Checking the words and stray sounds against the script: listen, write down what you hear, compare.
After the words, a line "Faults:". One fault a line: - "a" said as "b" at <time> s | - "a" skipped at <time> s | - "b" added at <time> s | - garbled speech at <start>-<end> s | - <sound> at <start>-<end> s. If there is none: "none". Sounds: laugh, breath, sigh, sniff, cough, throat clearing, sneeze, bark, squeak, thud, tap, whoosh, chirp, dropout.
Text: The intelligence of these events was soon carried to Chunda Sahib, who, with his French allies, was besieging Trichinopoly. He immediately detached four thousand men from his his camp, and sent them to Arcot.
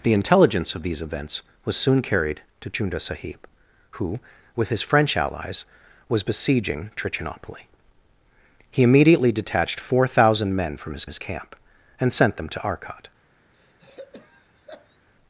The intelligence of these events was soon carried to Chunda Sahib, who, with his French allies, was besieging Trichinopoly. He immediately detached four thousand men from his his camp, and sent them to Arcot.
Faults:
- throat clearing at 13.5-15.0 s